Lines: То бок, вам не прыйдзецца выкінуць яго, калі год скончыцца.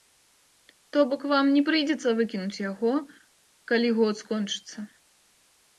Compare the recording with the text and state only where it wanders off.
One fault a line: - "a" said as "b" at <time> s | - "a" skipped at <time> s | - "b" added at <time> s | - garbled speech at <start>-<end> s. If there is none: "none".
none